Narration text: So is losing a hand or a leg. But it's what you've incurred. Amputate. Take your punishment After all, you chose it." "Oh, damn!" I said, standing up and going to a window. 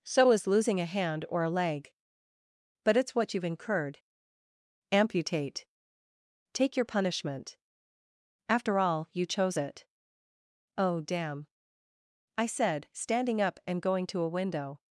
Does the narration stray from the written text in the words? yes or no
no